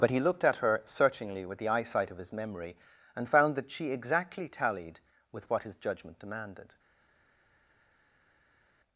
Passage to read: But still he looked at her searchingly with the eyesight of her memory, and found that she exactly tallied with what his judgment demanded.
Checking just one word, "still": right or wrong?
wrong